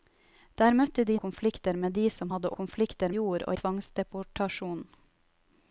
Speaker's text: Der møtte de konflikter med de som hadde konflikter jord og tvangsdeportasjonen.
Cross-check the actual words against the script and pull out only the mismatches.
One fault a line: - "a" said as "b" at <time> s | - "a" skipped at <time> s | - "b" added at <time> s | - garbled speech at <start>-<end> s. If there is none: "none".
none